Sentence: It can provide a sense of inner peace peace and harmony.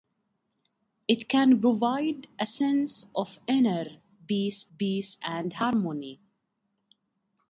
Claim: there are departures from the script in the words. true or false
false